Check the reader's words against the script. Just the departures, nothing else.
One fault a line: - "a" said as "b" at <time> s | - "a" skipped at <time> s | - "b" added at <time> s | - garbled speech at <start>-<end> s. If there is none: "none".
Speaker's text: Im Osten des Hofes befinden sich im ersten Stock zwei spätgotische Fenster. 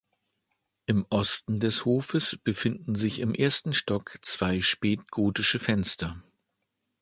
none